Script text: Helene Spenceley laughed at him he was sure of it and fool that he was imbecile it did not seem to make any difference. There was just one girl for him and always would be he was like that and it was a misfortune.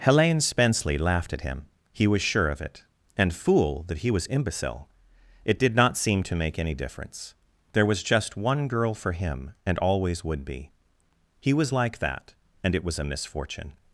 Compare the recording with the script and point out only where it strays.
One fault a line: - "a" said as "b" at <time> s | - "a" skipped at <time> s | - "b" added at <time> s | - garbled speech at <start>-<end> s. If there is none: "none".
none